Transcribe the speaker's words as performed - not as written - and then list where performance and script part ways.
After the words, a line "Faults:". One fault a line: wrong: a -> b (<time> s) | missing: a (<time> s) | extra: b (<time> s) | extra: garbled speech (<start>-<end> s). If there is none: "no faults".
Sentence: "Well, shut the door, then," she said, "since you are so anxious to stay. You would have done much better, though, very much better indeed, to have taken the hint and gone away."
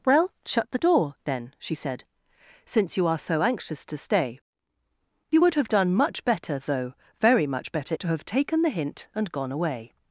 "Well, shut the door, then," she said, "since you are so anxious to stay. You would have done much better, though, very much better to have taken the hint and gone away."
Faults:
missing: indeed (7.9 s)